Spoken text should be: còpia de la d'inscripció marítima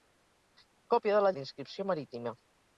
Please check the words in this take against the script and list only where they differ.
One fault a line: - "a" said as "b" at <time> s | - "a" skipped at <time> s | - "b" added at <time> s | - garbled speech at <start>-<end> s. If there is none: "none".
none